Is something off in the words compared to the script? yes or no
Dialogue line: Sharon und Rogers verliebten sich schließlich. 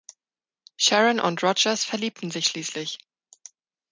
no